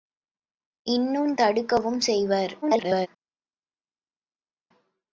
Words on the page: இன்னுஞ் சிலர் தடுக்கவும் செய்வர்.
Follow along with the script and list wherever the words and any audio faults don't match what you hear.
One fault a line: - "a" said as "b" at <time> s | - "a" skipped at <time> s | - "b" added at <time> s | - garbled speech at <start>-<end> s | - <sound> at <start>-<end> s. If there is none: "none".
- "சிலர்" skipped at 1.4 s
- garbled speech at 2.6-3.1 s